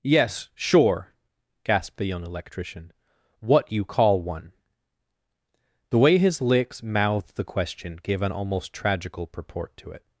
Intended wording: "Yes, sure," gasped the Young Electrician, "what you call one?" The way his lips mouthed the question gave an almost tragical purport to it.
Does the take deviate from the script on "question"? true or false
false